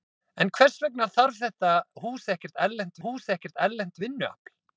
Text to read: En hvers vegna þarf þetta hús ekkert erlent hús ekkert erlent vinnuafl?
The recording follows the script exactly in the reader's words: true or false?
true